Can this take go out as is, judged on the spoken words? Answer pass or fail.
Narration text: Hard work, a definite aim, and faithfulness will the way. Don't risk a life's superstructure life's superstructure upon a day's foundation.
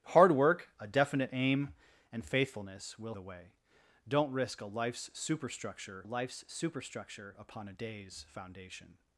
pass